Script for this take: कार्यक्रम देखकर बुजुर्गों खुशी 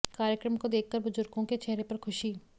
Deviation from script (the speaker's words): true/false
true